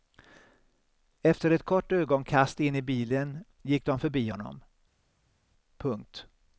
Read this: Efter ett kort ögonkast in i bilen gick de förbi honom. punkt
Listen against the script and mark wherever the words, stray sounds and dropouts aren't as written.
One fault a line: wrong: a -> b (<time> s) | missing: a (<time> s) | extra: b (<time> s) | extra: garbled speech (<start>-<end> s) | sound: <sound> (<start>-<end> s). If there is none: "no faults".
no faults